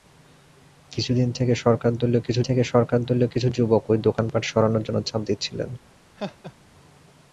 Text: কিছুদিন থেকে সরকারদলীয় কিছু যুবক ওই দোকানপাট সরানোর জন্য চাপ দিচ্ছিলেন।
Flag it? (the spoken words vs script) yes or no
yes